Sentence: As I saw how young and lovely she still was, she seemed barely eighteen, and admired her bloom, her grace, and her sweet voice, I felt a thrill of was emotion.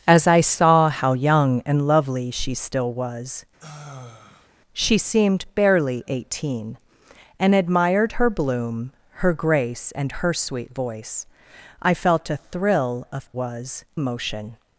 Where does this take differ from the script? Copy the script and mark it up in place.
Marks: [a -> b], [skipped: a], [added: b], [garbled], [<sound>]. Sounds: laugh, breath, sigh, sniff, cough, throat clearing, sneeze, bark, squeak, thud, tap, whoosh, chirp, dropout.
As I saw how young and lovely she still was, [sigh] she seemed barely eighteen, and admired her bloom, her grace, and her sweet voice, I felt a thrill of was emotion.